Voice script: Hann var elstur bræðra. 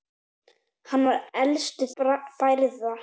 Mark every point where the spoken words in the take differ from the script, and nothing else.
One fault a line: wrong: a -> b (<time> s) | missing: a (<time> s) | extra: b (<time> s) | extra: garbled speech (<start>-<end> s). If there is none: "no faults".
no faults